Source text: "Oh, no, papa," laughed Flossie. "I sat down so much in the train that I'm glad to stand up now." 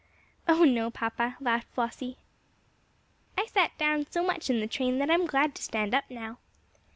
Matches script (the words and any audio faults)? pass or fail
pass